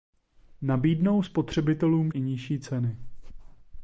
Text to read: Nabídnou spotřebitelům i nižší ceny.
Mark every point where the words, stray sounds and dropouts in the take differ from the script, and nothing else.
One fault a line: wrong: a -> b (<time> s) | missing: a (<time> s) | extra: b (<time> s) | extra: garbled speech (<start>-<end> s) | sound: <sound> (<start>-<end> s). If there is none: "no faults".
no faults